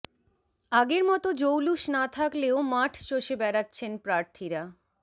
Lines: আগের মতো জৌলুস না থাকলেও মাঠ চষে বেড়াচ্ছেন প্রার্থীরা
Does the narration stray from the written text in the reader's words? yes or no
no